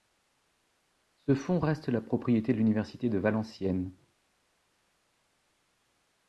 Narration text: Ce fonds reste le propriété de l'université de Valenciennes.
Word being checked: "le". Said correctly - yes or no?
no